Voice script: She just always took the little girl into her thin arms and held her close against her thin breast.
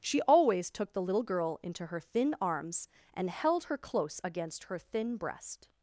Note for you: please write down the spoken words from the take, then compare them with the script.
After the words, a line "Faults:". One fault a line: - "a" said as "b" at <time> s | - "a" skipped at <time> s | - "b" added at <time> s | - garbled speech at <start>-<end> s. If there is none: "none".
She always took the little girl into her thin arms and held her close against her thin breast.
Faults:
- "just" skipped at 0.2 s